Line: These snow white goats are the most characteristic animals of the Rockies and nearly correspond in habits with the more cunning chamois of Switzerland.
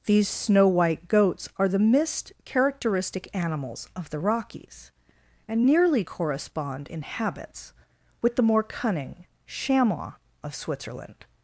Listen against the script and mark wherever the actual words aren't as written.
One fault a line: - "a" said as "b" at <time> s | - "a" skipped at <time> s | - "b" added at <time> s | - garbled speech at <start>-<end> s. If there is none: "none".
- "most" said as "mist" at 1.8 s